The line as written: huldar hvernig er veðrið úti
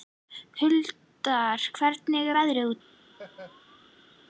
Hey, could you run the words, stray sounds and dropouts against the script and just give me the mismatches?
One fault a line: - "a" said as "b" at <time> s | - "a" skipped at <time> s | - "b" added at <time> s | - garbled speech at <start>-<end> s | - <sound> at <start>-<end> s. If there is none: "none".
- laugh at 3.1-4.2 s